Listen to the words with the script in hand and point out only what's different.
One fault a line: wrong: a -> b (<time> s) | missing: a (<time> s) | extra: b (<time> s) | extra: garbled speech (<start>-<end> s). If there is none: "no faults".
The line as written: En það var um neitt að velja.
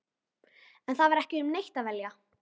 extra: ekki (1.2 s)